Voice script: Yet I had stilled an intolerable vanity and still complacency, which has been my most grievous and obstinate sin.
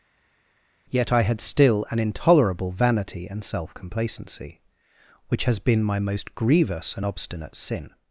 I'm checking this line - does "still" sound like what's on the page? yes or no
no